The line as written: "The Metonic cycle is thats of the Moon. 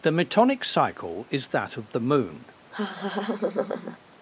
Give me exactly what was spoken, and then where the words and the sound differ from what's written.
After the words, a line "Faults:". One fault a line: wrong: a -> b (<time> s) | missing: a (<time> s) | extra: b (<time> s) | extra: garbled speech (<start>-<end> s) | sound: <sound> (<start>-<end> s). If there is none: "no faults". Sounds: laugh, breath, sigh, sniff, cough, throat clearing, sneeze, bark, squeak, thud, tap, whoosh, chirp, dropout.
"The Metonic cycle is that of the Moon.
Faults:
wrong: thats -> that (1.5 s)
sound: laugh (2.7-4.0 s)